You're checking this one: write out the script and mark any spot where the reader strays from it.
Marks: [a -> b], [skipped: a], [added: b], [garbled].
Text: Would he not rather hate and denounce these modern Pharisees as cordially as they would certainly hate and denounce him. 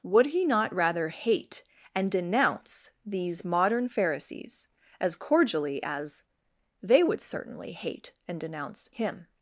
Would he not rather hate and denounce these modern Pharisees as cordially as they would certainly hate and denounce him.